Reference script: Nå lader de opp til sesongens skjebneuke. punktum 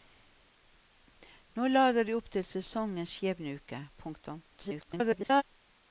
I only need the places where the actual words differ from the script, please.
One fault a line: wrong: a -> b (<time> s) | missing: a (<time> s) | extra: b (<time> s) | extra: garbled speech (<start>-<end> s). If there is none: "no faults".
extra: garbled speech (4.5-5.4 s)